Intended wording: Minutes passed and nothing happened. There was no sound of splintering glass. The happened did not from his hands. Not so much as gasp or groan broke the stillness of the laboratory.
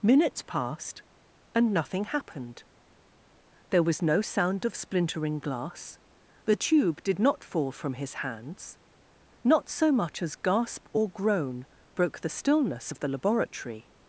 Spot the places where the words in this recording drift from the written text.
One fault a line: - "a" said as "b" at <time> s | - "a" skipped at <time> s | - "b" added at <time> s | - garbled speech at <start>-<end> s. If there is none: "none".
- "happened" said as "tube" at 6.5 s
- "fall" added at 7.4 s